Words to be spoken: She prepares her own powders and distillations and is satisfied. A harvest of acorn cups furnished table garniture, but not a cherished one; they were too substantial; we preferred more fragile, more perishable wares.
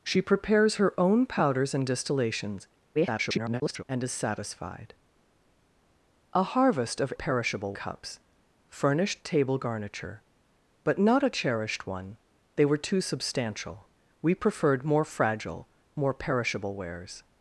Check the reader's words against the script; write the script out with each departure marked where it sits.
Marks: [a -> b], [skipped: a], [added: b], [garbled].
She prepares her own powders and distillations [garbled] and is satisfied. A harvest of [acorn -> perishable] cups furnished table garniture, but not a cherished one; they were too substantial; we preferred more fragile, more perishable wares.